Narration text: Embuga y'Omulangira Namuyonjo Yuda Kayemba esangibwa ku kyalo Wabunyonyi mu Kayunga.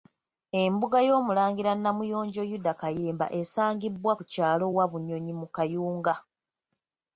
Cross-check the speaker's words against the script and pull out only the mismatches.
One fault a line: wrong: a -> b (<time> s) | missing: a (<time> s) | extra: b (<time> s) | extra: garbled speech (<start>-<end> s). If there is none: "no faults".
no faults